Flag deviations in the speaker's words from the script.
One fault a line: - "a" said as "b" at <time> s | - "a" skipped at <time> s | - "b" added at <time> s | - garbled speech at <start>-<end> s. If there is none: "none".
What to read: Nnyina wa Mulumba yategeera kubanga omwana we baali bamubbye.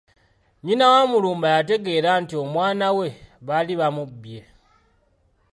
- "kubanga" said as "nti" at 2.2 s